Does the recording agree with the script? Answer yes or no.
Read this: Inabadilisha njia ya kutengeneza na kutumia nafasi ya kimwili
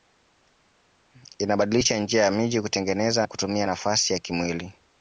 no